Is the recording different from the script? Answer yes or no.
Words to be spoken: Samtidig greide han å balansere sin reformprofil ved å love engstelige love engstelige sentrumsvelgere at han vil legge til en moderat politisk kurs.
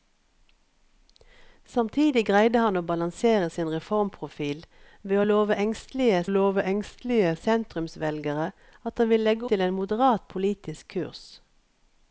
no